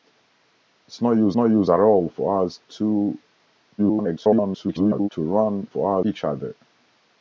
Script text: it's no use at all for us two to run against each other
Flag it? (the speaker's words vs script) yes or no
yes